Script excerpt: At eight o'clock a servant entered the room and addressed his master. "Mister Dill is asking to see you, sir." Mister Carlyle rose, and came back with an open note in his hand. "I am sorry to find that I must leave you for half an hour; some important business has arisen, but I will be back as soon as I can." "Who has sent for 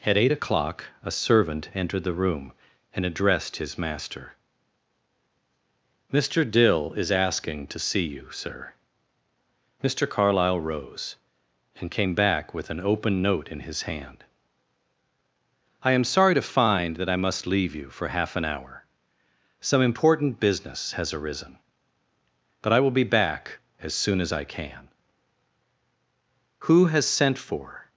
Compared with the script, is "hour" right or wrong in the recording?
right